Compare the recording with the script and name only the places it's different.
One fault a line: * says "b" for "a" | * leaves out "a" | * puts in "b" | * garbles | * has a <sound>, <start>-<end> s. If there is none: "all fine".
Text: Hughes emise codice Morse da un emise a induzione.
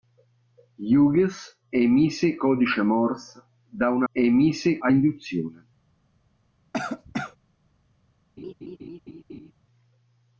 * has a cough, 6.7-7.4 s
* has a laugh, 8.4-9.5 s